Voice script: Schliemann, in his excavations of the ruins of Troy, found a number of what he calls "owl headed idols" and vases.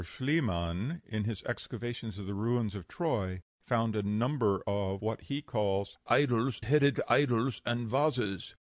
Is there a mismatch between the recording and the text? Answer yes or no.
yes